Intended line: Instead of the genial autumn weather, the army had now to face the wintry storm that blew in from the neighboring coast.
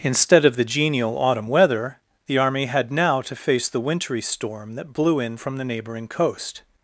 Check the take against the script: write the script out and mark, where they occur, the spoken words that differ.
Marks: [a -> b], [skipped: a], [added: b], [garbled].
Instead of the genial autumn weather, the army had now to face the wintry storm that blew in from the neighboring coast.